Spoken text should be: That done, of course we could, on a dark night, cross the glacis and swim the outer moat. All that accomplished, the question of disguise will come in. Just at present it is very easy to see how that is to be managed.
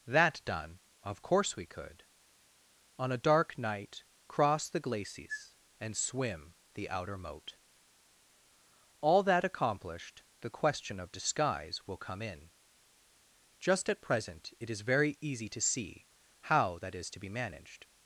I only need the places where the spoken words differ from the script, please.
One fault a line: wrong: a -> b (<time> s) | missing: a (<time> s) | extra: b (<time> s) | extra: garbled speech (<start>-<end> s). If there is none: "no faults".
no faults